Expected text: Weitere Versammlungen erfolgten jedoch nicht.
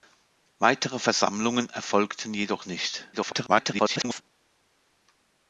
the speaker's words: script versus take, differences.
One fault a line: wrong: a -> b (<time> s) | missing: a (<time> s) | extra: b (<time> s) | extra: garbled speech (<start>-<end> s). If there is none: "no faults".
extra: garbled speech (3.1-4.2 s)